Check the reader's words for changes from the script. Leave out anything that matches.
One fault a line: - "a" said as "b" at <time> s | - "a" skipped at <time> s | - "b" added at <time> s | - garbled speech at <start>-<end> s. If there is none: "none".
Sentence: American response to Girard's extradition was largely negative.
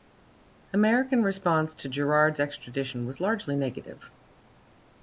none